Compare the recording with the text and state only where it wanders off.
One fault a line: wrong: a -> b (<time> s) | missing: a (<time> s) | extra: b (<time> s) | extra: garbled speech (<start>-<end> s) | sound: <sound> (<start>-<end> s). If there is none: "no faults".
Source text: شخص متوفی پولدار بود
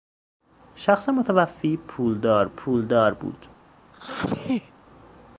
extra: پولدار (2.5 s)
sound: sneeze (3.9-4.7 s)